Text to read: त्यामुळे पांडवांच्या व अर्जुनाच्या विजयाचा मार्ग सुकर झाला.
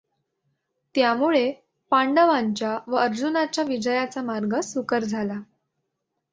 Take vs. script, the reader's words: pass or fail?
pass